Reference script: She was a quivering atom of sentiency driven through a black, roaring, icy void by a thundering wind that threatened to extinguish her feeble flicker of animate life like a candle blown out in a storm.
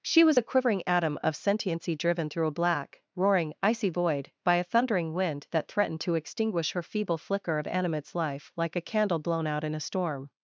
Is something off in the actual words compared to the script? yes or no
yes